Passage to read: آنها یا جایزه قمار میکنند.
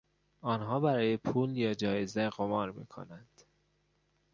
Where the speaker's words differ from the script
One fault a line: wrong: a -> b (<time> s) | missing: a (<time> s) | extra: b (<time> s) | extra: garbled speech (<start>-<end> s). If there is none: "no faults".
extra: برای پول (0.8 s)